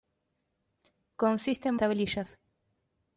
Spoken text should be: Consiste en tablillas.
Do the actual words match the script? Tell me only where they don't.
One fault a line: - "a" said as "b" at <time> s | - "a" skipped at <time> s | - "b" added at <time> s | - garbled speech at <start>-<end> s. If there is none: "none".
none